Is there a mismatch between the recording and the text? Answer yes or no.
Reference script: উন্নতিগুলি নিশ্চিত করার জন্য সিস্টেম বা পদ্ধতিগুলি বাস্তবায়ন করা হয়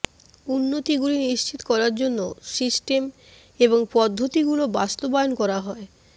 yes